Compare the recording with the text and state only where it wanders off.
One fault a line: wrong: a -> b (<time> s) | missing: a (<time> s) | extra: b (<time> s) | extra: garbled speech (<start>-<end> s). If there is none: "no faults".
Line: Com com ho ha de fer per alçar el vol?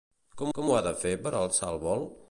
no faults